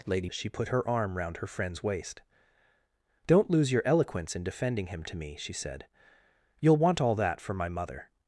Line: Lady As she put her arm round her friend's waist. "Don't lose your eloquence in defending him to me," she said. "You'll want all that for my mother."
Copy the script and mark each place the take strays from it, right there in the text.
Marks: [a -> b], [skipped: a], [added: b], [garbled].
Lady As she put her arm round her friend's waist. "Don't lose your eloquence in defending him to me," she said. "You'll want all that for my mother."